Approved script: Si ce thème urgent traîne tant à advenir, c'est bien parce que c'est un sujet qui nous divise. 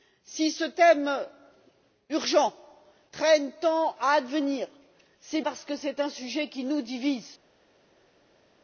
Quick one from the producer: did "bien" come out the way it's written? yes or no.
no